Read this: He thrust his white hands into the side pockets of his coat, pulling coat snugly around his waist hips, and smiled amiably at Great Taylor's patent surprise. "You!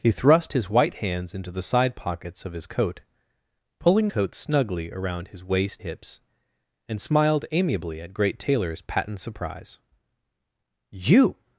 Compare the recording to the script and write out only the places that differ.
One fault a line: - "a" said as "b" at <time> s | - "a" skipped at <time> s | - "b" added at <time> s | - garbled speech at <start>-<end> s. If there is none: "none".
none